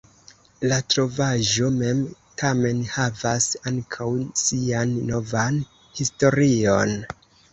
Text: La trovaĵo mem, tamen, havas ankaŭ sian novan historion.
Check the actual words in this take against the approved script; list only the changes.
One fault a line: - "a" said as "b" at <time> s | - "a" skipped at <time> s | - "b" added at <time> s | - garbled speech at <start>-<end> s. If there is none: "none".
none